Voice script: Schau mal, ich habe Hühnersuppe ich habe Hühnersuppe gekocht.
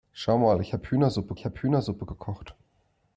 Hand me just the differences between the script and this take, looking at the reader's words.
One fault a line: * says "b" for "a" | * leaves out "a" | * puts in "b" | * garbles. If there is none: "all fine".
all fine